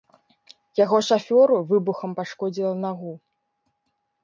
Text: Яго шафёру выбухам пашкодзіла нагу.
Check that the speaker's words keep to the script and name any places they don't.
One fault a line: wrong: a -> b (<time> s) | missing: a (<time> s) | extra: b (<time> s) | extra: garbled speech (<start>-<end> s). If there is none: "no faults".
no faults